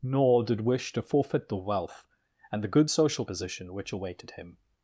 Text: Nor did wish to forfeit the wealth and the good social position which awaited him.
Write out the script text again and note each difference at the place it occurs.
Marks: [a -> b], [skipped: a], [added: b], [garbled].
Nor did wish to forfeit the wealth and the good social position which awaited him.